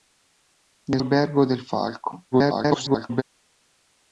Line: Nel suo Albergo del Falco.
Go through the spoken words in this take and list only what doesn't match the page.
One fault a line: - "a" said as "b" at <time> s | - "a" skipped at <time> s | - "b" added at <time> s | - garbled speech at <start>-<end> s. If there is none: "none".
- "suo" skipped at 1.0 s
- garbled speech at 2.3-3.2 s